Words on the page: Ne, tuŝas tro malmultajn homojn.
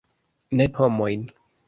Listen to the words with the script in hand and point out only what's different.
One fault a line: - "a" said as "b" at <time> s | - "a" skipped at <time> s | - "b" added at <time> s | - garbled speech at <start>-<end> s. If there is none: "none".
- "tuŝas tro malmultajn" skipped at 0.7 s